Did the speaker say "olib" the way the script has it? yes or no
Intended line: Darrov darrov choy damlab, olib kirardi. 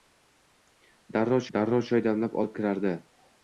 yes